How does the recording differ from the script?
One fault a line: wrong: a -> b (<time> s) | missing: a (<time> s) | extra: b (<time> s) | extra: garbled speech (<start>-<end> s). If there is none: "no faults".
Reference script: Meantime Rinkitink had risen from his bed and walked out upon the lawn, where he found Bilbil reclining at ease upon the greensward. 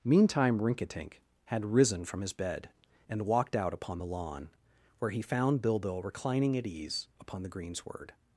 no faults